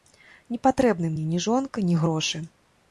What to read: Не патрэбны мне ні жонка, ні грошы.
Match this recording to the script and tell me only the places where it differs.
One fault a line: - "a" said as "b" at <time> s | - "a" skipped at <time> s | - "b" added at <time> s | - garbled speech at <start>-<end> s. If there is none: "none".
none